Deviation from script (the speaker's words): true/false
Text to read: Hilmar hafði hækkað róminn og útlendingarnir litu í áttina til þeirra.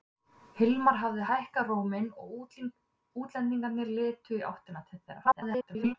true